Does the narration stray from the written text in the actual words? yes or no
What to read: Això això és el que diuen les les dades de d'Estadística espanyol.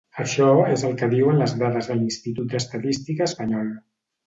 yes